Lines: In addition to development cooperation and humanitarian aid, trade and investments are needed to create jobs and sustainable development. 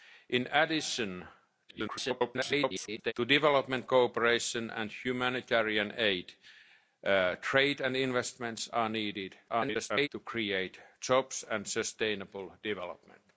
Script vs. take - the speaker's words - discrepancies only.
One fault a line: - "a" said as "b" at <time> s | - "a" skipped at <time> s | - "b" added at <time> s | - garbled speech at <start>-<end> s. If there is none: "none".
- garbled speech at 1.7-3.1 s
- garbled speech at 9.5-10.1 s